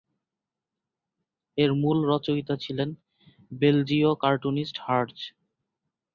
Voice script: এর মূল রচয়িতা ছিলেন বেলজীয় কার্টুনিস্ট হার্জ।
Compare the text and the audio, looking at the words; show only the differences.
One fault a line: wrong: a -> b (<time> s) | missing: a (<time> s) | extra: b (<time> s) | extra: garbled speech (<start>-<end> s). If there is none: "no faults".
no faults